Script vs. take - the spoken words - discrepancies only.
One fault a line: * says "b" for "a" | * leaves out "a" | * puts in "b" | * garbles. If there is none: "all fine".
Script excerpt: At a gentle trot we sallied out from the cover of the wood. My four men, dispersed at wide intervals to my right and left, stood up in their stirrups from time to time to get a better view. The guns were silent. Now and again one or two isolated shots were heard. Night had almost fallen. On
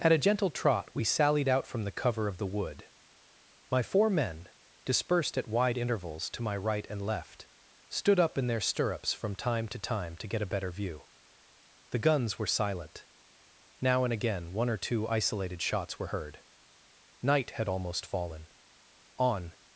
all fine